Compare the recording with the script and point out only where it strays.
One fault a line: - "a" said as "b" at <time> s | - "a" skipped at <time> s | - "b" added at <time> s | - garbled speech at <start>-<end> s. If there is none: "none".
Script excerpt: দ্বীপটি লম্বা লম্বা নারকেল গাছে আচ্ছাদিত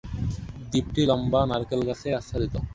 - "লম্বা" skipped at 1.4 s